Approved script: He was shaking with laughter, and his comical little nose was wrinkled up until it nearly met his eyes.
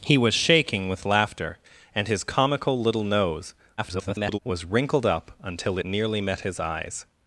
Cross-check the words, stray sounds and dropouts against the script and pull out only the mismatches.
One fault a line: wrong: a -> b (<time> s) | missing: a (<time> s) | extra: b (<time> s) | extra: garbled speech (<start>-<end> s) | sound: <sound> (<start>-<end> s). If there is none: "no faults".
extra: garbled speech (3.8-4.4 s)
missing: it (5.8 s)